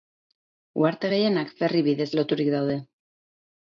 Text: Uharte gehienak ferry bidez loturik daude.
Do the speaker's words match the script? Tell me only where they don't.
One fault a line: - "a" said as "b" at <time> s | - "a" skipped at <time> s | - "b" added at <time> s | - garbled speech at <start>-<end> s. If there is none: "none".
none